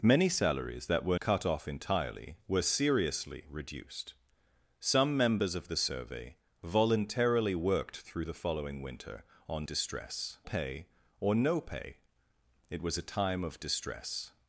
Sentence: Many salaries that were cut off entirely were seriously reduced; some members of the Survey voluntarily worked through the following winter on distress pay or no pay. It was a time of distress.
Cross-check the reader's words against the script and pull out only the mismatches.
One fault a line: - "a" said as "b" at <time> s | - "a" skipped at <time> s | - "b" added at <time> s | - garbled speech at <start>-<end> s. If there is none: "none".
none